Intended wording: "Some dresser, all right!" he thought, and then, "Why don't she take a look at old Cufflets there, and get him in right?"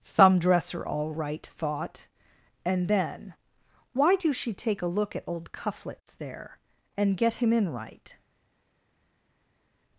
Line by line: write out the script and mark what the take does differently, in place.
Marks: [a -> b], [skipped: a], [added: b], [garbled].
"Some dresser, all right!" [skipped: he] thought, and then, "Why [don't -> do] she take a look at old Cufflets there, and get him in right?"